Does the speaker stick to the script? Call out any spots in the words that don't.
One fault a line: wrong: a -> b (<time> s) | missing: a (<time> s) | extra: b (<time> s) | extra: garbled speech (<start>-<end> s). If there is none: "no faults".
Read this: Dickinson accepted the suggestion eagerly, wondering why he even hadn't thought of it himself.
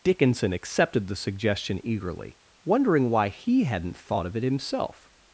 missing: even (3.6 s)